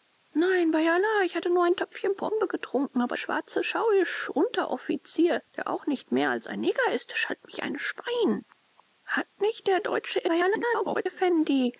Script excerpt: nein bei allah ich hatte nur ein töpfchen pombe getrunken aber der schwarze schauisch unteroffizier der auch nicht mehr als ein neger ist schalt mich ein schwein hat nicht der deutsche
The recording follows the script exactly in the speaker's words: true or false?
false